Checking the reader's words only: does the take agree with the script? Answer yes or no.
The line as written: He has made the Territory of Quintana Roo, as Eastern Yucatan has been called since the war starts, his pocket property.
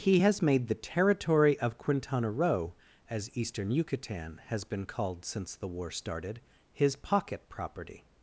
no